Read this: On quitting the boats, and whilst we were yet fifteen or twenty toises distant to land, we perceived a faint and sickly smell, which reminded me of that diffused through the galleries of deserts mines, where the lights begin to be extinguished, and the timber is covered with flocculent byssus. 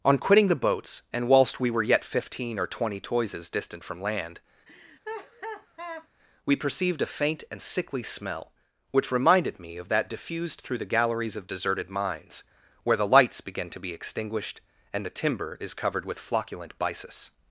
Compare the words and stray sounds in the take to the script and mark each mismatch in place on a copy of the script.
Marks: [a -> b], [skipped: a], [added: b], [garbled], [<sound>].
On quitting the boats, and whilst we were yet fifteen or twenty toises distant [to -> from] land, [laugh] we perceived a faint and sickly smell, which reminded me of that diffused through the galleries of [deserts -> deserted] mines, where the lights begin to be extinguished, and the timber is covered with flocculent byssus.